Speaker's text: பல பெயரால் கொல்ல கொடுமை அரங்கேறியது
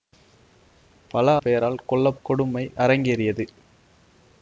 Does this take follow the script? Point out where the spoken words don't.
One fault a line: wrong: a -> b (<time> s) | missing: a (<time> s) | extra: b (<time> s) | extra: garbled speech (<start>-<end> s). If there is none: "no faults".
no faults